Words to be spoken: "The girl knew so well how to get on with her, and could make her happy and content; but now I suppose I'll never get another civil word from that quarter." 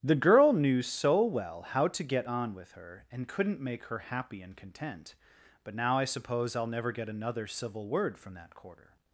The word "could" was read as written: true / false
false